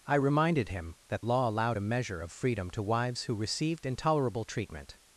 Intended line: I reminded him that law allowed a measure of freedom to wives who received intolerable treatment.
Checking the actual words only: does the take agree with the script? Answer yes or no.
yes